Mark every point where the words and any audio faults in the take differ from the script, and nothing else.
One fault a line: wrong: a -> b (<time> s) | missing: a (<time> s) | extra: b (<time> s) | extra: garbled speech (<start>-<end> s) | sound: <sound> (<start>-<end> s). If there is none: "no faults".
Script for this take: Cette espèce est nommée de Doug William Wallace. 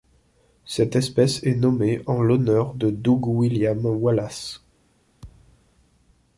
extra: en l'honneur (2.1 s)
sound: thud (5.2-5.7 s)